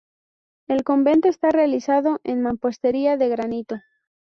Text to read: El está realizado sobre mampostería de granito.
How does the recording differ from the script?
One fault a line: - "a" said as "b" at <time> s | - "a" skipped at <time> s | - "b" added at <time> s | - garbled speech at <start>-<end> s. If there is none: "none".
- "convento" added at 0.8 s
- "sobre" said as "en" at 2.2 s